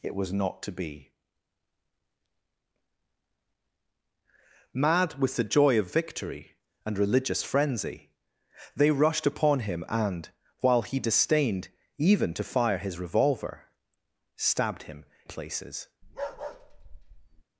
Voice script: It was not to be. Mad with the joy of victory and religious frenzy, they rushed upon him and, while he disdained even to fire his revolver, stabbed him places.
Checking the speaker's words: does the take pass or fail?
pass